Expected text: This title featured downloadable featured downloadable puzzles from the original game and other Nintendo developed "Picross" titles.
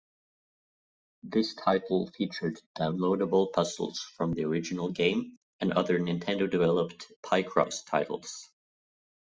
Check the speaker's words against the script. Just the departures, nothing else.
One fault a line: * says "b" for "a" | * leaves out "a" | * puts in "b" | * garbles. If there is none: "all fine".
* leaves out "featured downloadable"